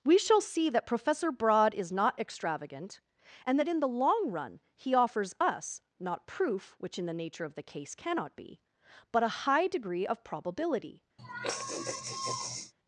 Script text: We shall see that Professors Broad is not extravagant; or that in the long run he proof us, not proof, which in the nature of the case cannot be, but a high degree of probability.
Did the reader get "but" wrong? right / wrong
right